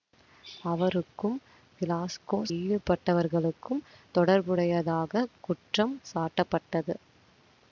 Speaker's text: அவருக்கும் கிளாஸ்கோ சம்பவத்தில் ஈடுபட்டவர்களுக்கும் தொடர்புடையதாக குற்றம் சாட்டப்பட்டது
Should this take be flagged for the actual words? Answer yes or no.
yes